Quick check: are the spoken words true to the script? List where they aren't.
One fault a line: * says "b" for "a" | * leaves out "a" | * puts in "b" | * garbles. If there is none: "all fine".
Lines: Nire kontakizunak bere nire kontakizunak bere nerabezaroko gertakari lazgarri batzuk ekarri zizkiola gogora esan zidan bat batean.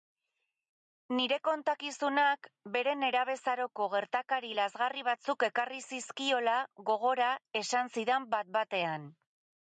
* leaves out "nire kontakizunak bere"